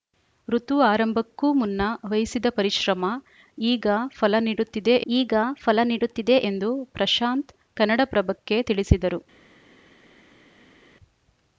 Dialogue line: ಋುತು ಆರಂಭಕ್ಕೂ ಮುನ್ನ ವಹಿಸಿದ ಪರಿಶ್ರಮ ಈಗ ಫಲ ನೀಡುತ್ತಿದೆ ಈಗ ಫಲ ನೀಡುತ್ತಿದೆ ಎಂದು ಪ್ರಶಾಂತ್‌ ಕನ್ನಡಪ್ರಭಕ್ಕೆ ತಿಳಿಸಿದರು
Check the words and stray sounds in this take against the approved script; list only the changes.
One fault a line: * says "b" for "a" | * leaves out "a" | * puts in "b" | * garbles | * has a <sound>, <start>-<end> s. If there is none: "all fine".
all fine